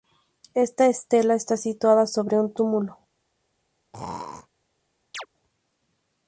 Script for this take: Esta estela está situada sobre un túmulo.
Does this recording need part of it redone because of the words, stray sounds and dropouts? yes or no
yes